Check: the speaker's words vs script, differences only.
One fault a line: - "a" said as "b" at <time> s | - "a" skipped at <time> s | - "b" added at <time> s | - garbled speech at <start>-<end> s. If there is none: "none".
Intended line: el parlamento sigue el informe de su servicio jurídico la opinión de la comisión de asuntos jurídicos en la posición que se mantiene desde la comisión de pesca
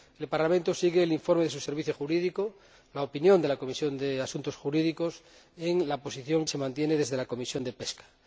- "que" skipped at 6.4 s